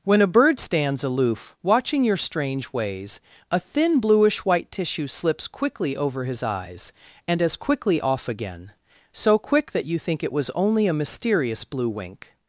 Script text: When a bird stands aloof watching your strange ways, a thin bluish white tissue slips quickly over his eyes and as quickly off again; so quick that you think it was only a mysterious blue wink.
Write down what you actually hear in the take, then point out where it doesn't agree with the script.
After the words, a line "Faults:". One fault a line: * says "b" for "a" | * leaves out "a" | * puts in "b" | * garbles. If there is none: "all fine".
When a bird stands aloof watching your strange ways, a thin bluish white tissue slips quickly over his eyes and as quickly off again; so quick that you think it was only a mysterious blue wink.
Faults:
all fine